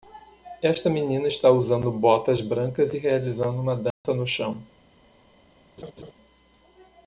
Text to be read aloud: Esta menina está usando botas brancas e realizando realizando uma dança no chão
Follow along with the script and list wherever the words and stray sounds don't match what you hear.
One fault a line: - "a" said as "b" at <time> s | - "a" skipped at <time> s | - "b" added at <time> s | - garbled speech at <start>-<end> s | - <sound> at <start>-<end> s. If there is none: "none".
- "realizando" skipped at 3.6 s
- dropout at 3.9-4.0 s
- laugh at 5.8-6.1 s